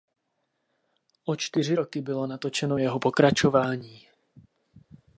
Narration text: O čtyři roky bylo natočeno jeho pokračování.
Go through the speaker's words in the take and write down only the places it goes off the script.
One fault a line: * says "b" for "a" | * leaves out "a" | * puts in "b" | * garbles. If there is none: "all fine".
all fine